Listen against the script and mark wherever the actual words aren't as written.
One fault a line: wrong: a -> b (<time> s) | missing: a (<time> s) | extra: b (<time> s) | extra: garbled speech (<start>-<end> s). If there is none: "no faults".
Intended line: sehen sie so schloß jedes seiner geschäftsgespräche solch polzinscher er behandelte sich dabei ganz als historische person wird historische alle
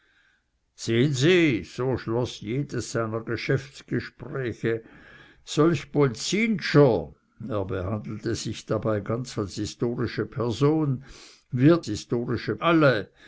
no faults